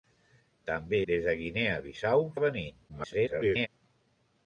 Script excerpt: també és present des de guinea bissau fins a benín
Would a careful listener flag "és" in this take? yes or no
yes